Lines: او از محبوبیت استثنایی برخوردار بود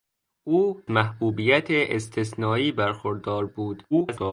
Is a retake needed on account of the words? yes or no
yes